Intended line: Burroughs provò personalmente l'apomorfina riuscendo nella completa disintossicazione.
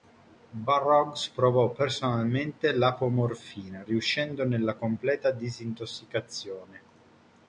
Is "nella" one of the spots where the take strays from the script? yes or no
no